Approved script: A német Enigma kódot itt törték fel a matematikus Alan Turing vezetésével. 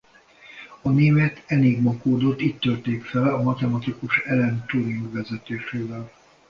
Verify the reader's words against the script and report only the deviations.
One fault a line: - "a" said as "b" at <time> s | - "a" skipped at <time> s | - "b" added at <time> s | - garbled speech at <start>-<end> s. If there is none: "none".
none